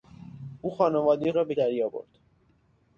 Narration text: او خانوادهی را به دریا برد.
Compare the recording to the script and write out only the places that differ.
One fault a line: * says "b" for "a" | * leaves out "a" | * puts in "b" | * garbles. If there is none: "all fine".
all fine